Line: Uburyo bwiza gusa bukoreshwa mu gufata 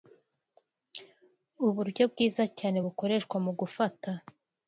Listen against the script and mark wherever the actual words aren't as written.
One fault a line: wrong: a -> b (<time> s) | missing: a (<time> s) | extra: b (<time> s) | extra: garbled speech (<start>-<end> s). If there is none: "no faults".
wrong: gusa -> cyane (2.6 s)